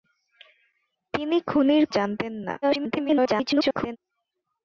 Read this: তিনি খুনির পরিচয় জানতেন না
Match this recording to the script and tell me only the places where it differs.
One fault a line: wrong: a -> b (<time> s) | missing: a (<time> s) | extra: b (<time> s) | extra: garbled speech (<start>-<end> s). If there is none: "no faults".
missing: পরিচয় (1.8 s)
extra: garbled speech (2.6-4.0 s)